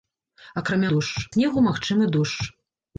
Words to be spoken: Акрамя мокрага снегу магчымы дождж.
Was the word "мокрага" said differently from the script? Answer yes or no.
yes